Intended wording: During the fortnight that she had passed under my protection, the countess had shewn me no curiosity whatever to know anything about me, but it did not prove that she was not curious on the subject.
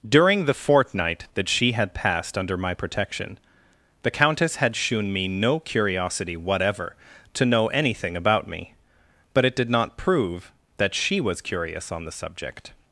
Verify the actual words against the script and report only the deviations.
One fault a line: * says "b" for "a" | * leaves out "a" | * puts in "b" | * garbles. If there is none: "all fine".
* leaves out "not"